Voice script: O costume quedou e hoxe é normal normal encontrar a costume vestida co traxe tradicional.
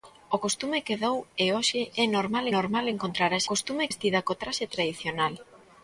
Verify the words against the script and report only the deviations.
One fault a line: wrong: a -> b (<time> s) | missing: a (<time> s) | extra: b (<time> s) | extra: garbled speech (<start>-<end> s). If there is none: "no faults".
no faults